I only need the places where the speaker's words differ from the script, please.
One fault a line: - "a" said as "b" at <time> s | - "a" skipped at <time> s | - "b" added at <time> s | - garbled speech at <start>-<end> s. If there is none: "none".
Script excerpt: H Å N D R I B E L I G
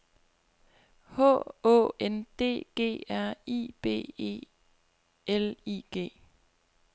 - "G" added at 2.8 s